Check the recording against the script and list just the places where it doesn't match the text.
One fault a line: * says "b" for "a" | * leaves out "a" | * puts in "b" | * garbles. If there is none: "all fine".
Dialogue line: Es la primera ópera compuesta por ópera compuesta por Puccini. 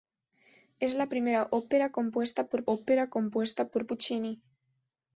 all fine